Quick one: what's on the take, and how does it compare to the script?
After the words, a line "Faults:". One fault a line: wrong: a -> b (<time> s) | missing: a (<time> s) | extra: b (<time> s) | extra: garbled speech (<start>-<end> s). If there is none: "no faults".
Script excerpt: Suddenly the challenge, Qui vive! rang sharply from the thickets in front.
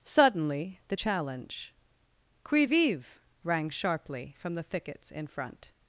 Suddenly the challenge, Qui vive! rang sharply from the thickets in front.
Faults:
no faults